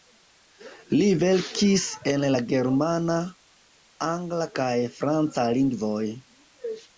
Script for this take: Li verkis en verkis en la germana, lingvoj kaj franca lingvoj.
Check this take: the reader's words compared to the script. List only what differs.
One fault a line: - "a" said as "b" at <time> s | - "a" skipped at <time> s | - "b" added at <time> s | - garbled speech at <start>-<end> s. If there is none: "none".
- "verkis en" skipped at 2.3 s
- "lingvoj" said as "angla" at 4.1 s